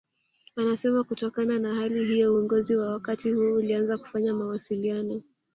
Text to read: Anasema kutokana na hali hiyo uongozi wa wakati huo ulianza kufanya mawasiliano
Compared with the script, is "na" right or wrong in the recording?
right